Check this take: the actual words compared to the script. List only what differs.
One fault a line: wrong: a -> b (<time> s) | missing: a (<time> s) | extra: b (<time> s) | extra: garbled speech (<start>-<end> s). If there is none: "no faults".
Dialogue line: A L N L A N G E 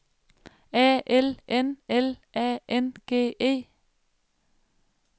no faults